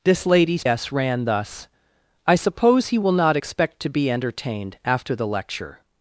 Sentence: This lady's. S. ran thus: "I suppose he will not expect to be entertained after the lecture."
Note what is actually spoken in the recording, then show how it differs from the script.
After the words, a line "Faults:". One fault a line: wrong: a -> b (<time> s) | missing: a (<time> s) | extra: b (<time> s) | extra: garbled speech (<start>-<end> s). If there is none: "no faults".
This lady's. S. ran thus: "I suppose he will not expect to be entertained after the lecture."
Faults:
no faults